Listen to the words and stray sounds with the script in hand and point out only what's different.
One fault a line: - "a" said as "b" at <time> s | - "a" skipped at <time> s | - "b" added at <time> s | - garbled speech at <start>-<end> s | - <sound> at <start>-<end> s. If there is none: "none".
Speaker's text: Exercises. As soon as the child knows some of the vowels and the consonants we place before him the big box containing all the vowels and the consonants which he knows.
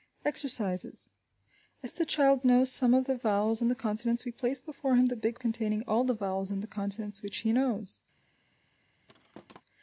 - "soon" skipped at 1.9 s
- "box" skipped at 5.4 s
- thud at 9.1-9.6 s